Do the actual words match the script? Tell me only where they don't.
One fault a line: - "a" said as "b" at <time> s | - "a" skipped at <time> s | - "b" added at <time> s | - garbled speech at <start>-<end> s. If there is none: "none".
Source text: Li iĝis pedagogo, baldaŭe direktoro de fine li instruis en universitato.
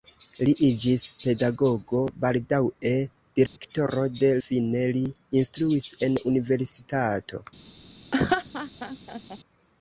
none